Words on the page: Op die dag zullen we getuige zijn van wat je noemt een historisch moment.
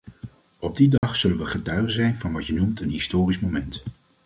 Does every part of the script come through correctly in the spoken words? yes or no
yes